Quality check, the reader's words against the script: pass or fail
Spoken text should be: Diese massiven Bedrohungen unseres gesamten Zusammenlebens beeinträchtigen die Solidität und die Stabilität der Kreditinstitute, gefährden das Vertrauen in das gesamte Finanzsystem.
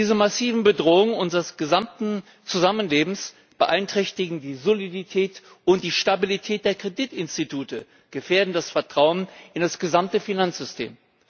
pass